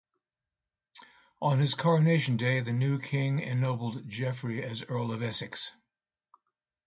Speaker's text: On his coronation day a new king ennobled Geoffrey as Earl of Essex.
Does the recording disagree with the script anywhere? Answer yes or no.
yes